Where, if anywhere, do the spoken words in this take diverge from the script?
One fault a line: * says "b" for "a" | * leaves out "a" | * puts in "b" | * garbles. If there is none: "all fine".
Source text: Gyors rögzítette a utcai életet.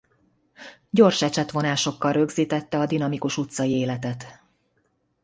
* puts in "ecsetvonásokkal"
* puts in "dinamikus"